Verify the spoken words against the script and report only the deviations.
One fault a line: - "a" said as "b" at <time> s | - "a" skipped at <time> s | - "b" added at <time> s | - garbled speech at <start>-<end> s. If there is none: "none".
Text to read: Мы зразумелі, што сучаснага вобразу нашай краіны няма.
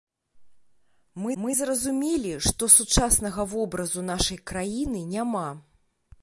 - "мы" added at 1.4 s